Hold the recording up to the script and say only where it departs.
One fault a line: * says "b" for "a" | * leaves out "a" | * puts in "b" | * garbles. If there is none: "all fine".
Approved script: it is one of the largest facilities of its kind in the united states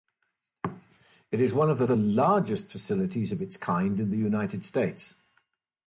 * puts in "the"